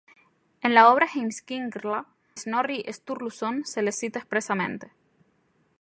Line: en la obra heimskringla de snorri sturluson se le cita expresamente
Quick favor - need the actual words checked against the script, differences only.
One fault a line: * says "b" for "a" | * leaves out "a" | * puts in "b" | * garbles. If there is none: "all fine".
* leaves out "de"